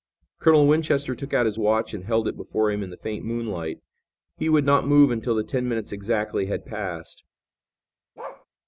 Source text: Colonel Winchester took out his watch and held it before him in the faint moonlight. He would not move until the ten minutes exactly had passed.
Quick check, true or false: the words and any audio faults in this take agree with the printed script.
false